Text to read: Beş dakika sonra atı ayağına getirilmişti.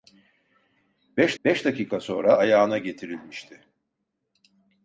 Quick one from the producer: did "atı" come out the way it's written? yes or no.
no